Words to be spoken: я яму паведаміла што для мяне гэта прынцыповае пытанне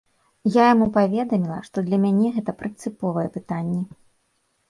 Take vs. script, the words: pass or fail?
pass